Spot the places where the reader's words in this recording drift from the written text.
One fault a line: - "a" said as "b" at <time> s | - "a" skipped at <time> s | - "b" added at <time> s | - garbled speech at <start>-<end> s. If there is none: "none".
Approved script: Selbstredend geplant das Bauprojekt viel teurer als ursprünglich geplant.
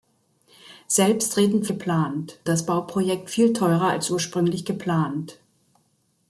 none